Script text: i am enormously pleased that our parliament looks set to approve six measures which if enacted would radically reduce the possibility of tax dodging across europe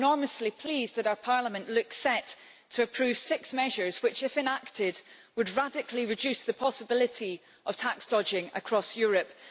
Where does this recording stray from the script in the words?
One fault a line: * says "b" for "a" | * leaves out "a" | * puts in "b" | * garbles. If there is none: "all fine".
all fine